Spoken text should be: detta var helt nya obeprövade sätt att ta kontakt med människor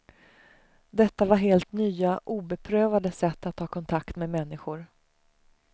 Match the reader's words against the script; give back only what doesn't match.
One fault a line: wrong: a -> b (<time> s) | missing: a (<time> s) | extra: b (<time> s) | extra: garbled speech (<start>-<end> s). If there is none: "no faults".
no faults